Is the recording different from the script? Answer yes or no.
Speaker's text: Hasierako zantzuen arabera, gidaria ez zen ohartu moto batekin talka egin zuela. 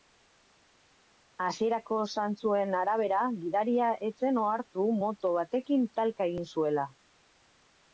no